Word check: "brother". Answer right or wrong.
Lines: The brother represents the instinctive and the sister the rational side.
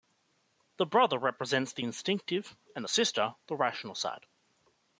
right